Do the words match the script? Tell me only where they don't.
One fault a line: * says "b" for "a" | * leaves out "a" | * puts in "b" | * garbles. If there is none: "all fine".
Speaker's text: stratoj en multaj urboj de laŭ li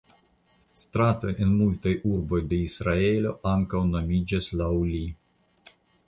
* puts in "israelo ankaŭ nomiĝas"